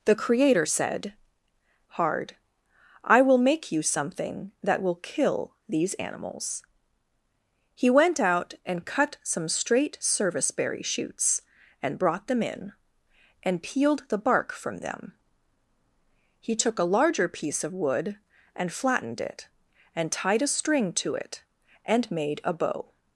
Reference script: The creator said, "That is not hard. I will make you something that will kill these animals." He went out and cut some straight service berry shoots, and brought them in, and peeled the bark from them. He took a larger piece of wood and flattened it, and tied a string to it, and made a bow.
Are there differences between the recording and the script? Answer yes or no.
yes